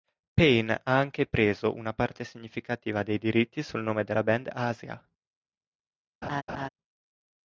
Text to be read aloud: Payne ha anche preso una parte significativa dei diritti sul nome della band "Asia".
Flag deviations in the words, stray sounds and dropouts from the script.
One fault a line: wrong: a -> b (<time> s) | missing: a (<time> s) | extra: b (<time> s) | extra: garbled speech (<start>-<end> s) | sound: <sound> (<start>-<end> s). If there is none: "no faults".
sound: laugh (6.2-6.7 s)